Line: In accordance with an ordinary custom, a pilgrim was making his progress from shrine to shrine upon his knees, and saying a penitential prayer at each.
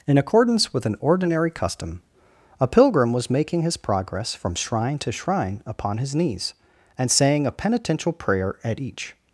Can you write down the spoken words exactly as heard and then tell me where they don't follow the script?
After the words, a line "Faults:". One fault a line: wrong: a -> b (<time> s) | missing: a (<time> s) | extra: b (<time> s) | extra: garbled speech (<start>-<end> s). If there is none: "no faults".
In accordance with an ordinary custom, a pilgrim was making his progress from shrine to shrine upon his knees, and saying a penitential prayer at each.
Faults:
no faults